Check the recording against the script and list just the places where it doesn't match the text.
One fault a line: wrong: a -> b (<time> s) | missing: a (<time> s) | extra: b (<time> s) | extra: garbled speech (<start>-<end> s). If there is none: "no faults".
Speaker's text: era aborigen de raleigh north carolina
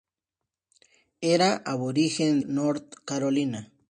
missing: de raleigh (2.4 s)